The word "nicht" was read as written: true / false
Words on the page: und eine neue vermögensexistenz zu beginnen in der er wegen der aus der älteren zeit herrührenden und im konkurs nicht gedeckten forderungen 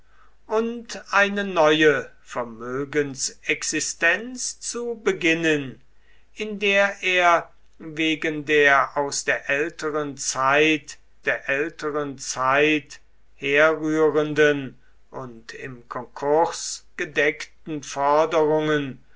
false